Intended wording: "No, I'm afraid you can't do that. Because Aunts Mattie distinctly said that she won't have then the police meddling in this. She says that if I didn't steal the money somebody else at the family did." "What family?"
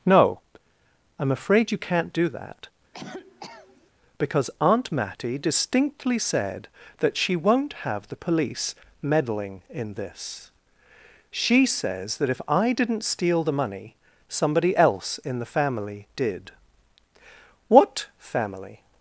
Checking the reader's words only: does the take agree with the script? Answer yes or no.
no